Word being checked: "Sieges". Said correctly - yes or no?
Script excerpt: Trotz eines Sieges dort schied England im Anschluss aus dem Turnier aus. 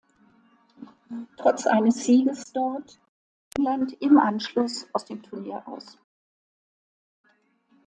yes